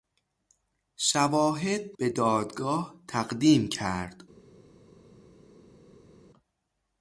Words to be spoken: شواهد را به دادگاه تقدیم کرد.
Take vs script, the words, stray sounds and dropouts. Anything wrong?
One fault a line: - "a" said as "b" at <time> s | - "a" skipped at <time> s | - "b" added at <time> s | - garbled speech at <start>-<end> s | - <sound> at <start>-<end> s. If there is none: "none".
- "را" skipped at 1.9 s